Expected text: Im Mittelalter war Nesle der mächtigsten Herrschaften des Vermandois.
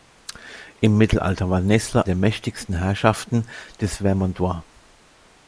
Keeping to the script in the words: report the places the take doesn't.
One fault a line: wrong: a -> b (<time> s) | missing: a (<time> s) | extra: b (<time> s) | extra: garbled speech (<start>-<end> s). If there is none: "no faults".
no faults